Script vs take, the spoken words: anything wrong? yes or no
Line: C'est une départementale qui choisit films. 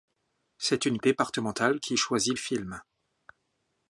no